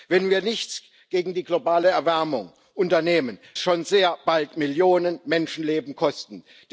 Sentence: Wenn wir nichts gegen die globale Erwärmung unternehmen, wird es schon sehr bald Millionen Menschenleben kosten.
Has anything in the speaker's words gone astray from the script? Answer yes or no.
yes